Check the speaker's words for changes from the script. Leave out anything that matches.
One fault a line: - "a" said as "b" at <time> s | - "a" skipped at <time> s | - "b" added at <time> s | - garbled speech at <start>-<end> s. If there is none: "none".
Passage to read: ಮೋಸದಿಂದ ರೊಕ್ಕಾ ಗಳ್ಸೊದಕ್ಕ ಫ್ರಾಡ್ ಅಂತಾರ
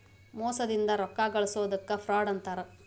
none